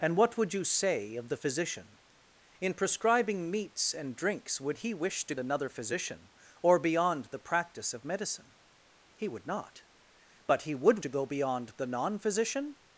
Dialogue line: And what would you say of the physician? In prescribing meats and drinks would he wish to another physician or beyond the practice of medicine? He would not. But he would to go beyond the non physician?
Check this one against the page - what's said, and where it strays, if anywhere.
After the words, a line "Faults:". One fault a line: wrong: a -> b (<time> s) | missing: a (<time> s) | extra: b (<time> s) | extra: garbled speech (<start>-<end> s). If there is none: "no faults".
And what would you say of the physician? In prescribing meats and drinks would he wish to another physician or beyond the practice of medicine? He would not. But he would to go beyond the non physician?
Faults:
no faults